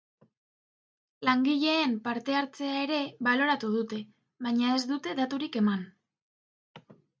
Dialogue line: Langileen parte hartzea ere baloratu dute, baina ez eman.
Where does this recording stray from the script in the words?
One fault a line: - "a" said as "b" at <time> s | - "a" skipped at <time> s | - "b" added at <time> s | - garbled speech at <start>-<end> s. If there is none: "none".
- "dute daturik" added at 5.0 s